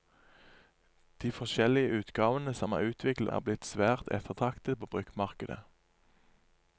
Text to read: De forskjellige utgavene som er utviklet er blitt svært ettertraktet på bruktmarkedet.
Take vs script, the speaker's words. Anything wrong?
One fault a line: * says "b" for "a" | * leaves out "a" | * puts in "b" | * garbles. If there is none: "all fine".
all fine